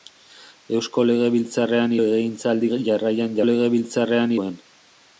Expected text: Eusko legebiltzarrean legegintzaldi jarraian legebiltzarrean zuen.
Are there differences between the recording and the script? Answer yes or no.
no